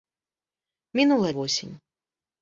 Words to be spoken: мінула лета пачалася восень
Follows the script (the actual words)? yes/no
no